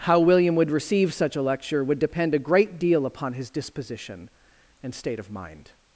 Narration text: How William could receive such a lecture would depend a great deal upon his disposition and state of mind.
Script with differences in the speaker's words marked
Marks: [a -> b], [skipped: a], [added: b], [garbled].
How William [could -> would] receive such a lecture would depend a great deal upon his disposition and state of mind.